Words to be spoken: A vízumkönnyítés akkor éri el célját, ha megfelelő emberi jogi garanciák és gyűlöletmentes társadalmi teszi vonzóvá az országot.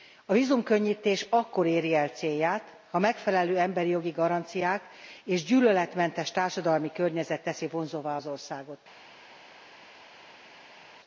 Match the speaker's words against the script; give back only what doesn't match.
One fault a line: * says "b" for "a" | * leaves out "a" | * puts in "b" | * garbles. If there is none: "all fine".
* puts in "környezet"